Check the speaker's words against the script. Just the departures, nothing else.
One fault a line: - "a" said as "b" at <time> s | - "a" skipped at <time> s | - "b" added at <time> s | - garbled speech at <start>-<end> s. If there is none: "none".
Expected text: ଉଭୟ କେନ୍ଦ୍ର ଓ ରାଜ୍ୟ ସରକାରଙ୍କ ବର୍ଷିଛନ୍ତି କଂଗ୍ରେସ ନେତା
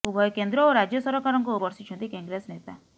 none